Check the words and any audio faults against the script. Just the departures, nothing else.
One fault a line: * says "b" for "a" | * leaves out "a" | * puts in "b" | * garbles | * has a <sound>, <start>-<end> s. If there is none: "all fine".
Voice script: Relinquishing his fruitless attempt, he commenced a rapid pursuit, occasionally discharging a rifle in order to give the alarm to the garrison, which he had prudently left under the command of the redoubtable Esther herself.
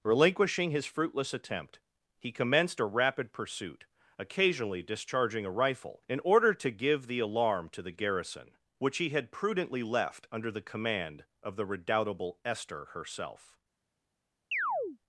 * has a chirp, 14.5-15.0 s